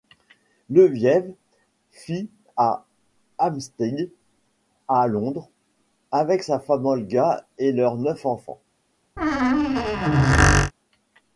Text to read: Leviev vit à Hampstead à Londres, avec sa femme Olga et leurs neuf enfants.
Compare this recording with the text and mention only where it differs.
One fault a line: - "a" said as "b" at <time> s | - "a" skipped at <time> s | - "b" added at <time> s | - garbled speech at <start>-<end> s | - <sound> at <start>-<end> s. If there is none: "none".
- squeak at 9.2-10.7 s